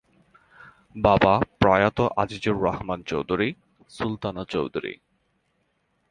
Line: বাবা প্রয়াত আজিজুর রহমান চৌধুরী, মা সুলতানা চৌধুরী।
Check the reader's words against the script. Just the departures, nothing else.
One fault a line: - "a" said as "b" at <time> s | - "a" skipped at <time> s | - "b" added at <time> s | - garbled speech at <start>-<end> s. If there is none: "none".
- "মা" skipped at 3.5 s